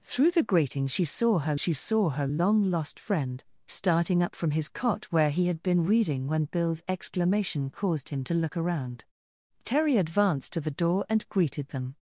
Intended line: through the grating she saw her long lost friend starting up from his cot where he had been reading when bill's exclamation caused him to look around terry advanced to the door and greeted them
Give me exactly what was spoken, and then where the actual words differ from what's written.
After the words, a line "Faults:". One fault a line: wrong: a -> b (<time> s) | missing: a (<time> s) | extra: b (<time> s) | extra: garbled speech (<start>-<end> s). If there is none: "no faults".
through the grating she saw her she saw her long lost friend starting up from his cot where he had been reading when bill's exclamation caused him to look around terry advanced to the door and greeted them
Faults:
extra: she saw her (1.5 s)